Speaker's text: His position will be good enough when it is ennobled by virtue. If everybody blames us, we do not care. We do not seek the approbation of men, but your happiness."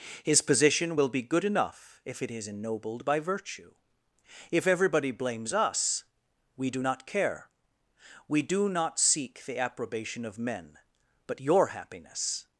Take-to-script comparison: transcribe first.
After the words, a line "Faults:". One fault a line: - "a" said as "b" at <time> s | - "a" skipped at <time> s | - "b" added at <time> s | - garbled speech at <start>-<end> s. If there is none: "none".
His position will be good enough if it is ennobled by virtue. If everybody blames us, we do not care. We do not seek the approbation of men, but your happiness."
Faults:
- "when" said as "if" at 2.0 s